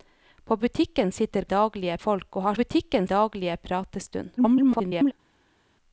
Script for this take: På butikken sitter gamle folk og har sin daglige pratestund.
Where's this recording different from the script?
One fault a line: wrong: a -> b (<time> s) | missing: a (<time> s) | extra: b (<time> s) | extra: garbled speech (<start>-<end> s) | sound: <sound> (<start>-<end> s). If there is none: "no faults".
wrong: gamle -> daglige (1.5 s)
wrong: sin -> butikken (2.5 s)
extra: garbled speech (4.4-5.1 s)